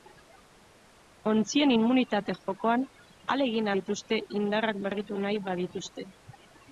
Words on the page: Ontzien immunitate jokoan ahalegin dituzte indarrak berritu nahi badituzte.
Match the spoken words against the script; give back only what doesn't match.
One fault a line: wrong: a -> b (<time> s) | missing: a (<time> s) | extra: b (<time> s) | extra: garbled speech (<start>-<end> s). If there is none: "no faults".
no faults